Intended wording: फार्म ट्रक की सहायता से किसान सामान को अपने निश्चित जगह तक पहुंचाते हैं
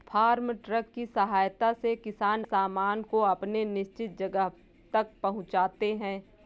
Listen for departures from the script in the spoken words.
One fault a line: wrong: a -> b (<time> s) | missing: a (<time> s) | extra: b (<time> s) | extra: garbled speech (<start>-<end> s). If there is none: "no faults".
no faults